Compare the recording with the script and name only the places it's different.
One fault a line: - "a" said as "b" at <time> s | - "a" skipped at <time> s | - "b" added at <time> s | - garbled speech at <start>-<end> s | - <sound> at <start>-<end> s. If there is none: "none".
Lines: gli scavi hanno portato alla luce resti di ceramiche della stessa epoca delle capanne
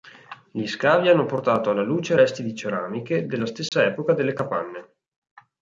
- dropout at 3.7-3.7 s